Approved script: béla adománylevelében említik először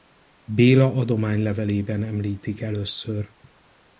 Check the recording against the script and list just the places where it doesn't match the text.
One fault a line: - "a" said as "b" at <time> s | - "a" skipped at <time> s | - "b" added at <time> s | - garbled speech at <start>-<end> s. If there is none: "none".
none